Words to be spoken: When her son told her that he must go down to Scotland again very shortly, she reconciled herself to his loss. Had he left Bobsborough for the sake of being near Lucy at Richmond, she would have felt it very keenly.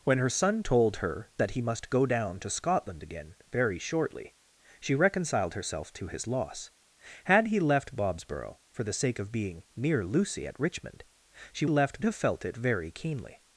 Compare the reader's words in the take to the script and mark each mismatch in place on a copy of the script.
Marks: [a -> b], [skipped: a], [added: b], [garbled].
When her son told her that he must go down to Scotland again very shortly, she reconciled herself to his loss. Had he left Bobsborough for the sake of being near Lucy at Richmond, she [would -> left] have felt it very keenly.